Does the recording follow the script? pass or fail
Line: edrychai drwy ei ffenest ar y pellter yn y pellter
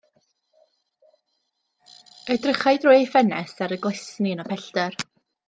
fail